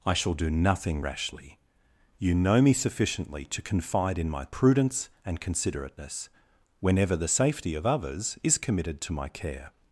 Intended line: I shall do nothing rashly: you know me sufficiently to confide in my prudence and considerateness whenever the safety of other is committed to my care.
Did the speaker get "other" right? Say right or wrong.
wrong